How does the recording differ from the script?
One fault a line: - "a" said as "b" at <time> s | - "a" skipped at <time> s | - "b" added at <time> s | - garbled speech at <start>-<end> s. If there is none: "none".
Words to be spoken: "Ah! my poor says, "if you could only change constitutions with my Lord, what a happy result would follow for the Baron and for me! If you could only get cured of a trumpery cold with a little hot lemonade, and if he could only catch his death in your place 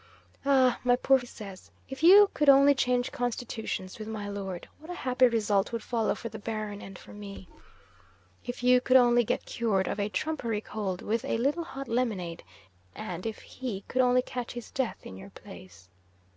none